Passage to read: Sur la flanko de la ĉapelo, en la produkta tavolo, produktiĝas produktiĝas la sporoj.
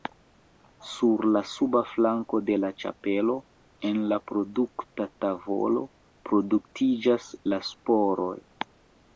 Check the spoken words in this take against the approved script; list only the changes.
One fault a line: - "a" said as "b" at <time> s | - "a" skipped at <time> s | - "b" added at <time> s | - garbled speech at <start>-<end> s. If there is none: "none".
- "suba" added at 1.5 s
- "produktiĝas" skipped at 7.3 s